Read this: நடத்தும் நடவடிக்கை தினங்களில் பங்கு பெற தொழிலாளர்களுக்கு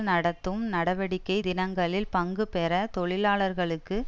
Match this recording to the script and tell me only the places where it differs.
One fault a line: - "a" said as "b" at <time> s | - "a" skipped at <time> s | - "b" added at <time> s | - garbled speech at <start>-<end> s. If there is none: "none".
none